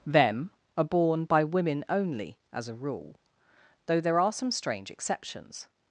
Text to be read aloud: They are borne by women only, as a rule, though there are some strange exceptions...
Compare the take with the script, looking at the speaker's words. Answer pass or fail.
fail